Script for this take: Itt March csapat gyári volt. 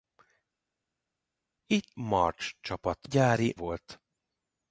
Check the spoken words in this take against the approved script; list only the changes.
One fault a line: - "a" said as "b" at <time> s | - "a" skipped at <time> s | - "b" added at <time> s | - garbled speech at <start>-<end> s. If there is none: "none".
none